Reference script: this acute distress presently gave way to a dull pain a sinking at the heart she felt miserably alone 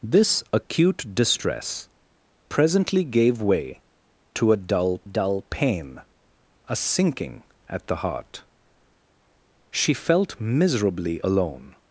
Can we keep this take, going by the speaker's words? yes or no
no